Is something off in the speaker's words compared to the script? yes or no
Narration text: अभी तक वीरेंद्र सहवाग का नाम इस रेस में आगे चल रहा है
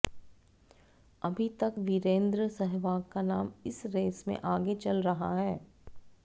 no